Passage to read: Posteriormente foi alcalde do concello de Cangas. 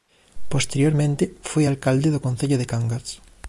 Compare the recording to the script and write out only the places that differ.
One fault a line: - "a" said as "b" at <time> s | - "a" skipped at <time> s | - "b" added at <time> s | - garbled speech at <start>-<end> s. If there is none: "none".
none